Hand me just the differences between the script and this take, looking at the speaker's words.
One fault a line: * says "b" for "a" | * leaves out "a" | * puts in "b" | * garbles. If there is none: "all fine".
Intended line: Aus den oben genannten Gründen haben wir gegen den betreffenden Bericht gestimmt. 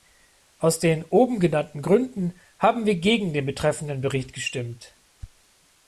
all fine